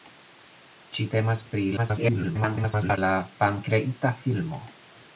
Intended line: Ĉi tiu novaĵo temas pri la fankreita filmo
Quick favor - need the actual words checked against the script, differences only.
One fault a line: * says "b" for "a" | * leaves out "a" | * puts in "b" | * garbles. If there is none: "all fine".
* leaves out "tiu novaĵo"
* garbles